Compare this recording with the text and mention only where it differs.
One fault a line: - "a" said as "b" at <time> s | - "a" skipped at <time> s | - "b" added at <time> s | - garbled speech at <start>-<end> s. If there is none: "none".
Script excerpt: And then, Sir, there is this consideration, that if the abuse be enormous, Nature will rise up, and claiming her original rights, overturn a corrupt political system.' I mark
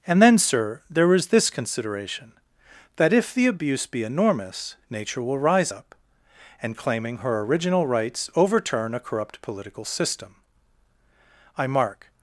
none